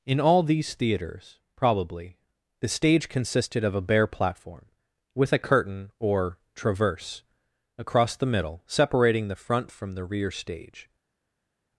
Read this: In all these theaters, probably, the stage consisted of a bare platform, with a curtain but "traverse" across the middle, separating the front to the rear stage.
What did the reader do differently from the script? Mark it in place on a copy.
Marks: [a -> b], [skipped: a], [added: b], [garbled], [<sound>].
In all these theaters, probably, the stage consisted of a bare platform, with a curtain [but -> or] "traverse" across the middle, separating the front [to -> from] the rear stage.